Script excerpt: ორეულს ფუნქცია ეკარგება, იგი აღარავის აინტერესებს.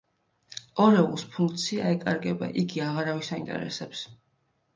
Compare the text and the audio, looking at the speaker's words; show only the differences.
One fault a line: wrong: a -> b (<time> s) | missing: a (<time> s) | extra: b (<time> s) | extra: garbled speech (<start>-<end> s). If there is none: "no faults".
no faults